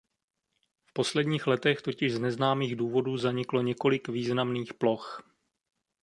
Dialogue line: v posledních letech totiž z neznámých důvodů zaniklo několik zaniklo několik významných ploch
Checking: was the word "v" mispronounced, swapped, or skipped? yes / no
no